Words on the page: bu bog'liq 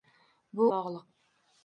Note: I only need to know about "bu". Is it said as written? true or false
true